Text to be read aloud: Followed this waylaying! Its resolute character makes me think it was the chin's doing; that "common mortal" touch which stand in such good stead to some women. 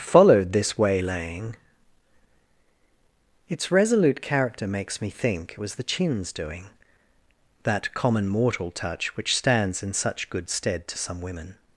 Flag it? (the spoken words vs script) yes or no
yes